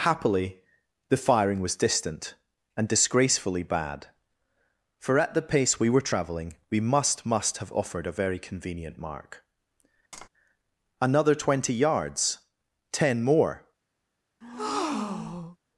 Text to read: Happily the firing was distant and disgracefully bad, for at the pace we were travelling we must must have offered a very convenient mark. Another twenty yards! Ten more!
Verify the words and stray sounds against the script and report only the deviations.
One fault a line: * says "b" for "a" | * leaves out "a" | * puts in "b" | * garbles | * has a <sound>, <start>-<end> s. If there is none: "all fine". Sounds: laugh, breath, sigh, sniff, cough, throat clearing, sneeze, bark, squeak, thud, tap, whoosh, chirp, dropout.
* has a tap, 10.1-10.3 s
* has a breath, 14.4-15.6 s